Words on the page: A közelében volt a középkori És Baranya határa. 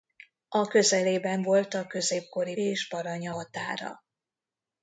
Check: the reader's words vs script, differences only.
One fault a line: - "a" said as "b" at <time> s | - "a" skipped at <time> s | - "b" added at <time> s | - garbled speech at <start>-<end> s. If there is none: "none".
none